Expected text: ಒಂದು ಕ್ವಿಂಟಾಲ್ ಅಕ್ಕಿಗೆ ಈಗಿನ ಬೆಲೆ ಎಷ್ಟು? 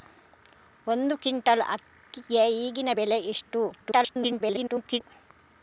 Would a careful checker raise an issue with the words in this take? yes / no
yes